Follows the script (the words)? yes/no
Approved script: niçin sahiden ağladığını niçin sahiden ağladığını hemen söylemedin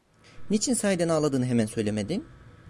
no